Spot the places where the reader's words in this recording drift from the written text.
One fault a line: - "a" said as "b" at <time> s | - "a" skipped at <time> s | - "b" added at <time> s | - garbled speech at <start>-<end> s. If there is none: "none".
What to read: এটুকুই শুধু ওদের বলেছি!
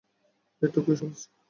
- "শুধু ওদের" skipped at 0.9 s